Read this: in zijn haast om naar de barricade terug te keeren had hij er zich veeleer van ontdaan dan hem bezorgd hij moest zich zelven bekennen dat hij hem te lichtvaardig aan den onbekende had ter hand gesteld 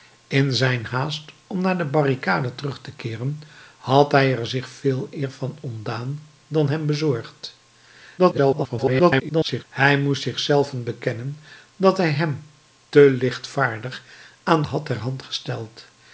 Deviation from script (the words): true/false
true